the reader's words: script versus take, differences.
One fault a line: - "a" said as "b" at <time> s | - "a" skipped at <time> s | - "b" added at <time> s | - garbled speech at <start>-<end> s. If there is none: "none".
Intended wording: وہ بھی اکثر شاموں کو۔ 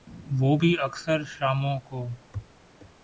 none